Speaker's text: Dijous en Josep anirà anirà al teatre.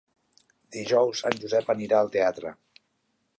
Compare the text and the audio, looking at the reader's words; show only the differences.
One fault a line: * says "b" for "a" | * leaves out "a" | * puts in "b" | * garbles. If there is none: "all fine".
* leaves out "anirà"